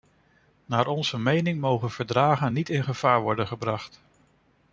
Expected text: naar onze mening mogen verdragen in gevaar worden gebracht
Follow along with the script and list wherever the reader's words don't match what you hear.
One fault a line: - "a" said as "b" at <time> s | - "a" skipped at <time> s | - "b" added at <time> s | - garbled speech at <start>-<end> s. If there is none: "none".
- "niet" added at 2.5 s